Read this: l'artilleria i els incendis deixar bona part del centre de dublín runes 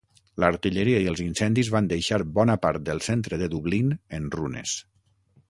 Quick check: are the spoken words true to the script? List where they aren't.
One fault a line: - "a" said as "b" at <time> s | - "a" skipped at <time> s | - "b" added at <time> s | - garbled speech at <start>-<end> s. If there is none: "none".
- "van" added at 1.7 s
- "en" added at 4.2 s